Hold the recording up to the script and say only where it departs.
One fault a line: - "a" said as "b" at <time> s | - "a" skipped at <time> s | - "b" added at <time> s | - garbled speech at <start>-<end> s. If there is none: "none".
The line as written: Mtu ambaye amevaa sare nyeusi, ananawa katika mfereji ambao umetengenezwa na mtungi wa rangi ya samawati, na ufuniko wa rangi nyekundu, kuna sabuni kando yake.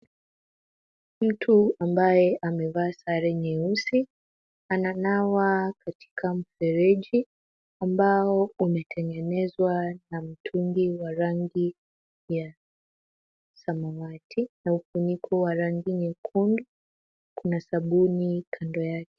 none